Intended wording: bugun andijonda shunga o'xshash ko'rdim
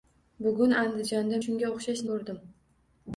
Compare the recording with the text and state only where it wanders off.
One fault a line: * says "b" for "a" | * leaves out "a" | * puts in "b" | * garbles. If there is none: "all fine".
all fine